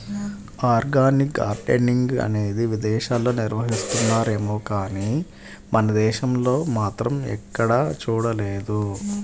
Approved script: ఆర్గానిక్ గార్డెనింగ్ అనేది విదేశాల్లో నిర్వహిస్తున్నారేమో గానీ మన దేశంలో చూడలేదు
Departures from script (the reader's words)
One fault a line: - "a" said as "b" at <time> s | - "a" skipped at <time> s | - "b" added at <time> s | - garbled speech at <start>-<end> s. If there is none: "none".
- "మాత్రం ఎక్కడా" added at 6.8 s